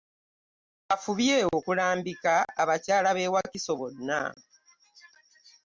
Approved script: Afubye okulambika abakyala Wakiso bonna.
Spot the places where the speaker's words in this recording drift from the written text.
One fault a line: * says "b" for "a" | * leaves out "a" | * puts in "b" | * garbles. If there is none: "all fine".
* puts in "b'e"